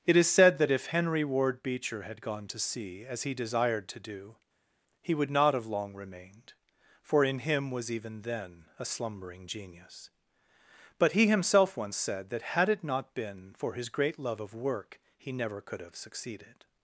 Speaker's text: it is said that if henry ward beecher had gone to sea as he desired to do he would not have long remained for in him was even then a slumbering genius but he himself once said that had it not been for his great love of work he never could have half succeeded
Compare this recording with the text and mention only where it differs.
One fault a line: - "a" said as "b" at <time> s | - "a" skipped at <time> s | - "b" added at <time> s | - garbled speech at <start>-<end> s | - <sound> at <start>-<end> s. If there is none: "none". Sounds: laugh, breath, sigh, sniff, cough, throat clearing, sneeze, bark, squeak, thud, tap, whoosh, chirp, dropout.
- "half" skipped at 16.0 s